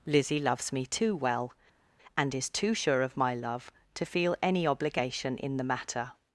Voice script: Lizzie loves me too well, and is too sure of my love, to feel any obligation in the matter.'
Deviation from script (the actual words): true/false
false